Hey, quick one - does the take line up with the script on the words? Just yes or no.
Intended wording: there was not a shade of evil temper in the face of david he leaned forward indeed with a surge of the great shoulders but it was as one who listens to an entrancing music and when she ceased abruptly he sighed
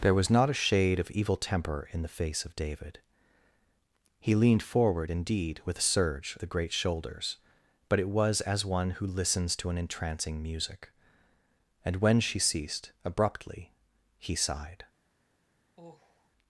no